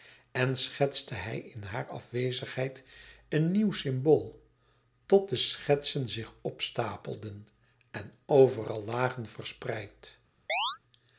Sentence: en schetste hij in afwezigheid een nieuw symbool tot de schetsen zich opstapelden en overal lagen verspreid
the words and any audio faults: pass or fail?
fail